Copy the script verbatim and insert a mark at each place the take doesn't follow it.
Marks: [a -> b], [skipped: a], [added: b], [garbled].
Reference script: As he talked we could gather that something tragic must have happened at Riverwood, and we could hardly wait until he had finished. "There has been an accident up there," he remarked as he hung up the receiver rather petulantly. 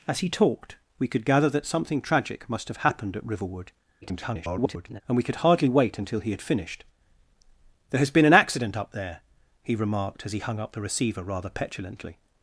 As he talked we could gather that something tragic must have happened at Riverwood, [garbled] and we could hardly wait until he had finished. "There has been an accident up there," he remarked as he hung up the receiver rather petulantly.